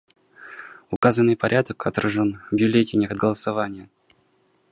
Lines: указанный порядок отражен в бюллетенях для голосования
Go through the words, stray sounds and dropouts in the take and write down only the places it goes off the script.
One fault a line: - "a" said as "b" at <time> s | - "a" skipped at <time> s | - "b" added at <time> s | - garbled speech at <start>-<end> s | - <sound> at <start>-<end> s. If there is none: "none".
- dropout at 1.0-1.0 s
- "для" skipped at 3.2 s